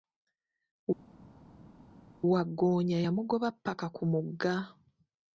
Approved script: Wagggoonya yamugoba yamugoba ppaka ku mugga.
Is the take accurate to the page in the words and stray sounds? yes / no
no